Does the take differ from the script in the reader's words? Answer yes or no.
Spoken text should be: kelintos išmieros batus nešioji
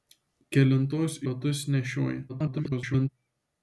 yes